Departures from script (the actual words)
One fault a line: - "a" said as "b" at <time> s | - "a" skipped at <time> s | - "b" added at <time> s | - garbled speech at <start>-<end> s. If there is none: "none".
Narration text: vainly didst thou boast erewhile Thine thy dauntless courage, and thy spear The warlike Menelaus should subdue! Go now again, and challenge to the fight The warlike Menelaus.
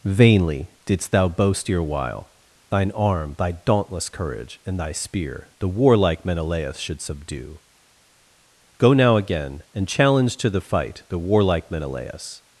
- "arm" added at 2.9 s